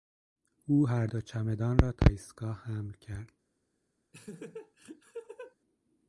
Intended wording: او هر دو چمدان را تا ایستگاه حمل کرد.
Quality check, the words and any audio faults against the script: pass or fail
fail